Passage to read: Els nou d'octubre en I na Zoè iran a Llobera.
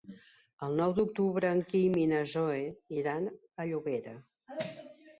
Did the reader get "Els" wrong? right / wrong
wrong